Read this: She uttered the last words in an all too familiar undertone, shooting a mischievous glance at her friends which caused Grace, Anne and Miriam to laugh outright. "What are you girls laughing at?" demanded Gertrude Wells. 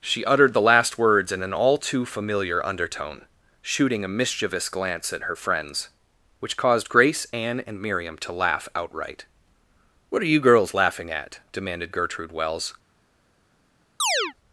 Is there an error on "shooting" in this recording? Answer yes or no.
no